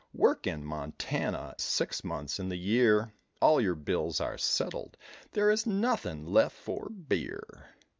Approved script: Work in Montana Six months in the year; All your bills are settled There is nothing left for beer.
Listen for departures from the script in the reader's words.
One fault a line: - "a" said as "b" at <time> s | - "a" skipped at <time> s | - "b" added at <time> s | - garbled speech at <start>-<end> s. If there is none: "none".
none